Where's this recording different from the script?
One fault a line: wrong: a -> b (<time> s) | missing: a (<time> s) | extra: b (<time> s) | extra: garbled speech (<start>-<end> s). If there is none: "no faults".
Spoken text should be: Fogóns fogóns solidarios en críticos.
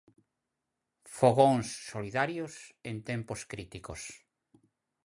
missing: fogóns (1.7 s)
extra: tempos (3.1 s)